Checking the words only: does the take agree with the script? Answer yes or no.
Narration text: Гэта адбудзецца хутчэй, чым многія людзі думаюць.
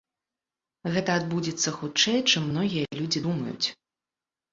yes